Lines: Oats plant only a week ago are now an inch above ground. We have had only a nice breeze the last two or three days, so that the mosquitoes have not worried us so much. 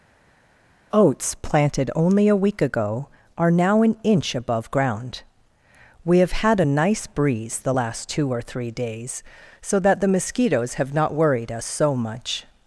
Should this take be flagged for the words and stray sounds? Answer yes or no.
yes